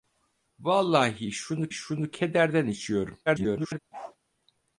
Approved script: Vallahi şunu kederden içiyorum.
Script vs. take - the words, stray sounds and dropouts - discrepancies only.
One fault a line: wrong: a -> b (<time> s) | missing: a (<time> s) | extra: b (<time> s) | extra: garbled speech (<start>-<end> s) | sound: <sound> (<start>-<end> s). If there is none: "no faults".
extra: şunu (1.7 s)
extra: garbled speech (3.3-3.8 s)
sound: bark (3.9-4.2 s)